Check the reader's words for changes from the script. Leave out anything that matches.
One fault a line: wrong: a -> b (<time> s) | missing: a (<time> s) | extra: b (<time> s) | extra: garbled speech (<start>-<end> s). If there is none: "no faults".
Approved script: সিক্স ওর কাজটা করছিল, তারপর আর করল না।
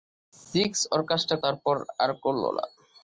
missing: করছিল (1.4 s)